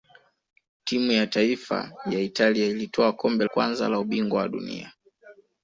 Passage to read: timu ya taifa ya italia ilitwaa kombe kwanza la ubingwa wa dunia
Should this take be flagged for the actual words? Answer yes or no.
no